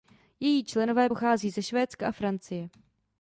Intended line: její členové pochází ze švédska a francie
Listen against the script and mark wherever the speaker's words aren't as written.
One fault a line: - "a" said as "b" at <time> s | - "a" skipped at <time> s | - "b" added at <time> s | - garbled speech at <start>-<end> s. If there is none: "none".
none